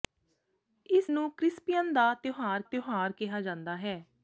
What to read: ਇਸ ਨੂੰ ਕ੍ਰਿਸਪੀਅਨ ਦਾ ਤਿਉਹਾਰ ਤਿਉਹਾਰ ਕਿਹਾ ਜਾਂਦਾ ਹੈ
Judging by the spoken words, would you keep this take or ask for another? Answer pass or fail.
pass